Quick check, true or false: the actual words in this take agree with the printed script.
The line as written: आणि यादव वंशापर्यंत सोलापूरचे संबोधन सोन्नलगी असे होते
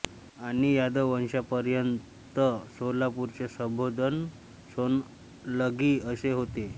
true